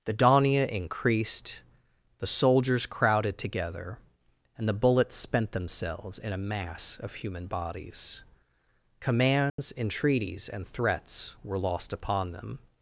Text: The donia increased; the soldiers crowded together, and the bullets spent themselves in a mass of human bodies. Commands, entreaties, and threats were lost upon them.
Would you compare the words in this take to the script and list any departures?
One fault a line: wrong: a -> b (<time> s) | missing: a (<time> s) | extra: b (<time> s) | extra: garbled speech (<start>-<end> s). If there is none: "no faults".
no faults